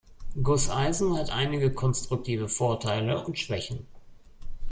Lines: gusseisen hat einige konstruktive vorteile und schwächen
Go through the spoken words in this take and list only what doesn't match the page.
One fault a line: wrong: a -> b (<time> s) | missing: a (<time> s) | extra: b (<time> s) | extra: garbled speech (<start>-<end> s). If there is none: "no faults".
no faults